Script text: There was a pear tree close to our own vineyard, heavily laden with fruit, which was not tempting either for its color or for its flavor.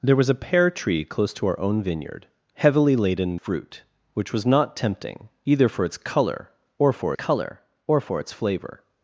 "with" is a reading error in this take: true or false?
true